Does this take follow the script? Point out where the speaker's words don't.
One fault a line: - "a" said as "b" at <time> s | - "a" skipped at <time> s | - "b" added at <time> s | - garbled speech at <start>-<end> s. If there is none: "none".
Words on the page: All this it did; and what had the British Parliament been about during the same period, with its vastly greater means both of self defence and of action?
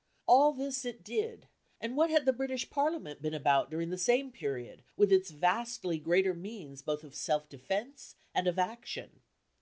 none